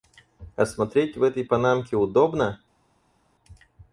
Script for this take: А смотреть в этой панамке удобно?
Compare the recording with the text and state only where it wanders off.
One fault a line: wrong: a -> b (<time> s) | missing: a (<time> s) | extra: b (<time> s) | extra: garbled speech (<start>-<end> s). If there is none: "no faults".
no faults